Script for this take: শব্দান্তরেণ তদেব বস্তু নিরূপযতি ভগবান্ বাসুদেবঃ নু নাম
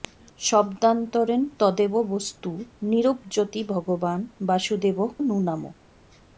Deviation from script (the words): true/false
false